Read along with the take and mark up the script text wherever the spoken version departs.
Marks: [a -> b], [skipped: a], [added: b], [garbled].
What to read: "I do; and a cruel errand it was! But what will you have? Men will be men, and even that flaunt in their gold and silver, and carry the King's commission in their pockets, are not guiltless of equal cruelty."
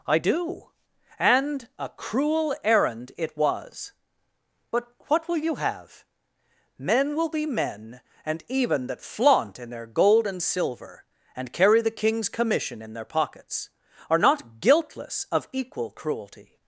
"I do; and a cruel errand it was! But what will you have? Men will be men, and even that flaunt in their gold and silver, and carry the King's commission in their pockets, are not guiltless of equal cruelty."